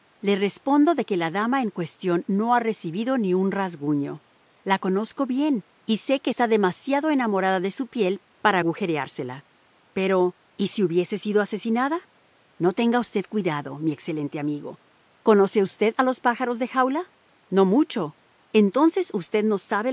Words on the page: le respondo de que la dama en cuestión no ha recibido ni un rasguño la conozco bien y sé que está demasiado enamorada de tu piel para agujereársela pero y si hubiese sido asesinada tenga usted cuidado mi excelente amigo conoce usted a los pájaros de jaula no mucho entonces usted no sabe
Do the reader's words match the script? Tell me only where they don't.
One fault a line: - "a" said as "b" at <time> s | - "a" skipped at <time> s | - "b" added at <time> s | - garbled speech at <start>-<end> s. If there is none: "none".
- "tu" said as "su" at 7.7 s
- "no" added at 12.6 s